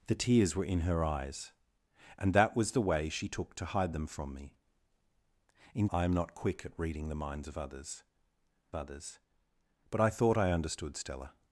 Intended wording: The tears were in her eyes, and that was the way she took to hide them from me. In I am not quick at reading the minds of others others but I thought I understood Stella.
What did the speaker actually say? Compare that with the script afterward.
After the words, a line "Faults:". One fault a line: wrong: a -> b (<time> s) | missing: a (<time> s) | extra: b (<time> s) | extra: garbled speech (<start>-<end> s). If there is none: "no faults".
The tears were in her eyes, and that was the way she took to hide them from me. In I am not quick at reading the minds of others others but I thought I understood Stella.
Faults:
no faults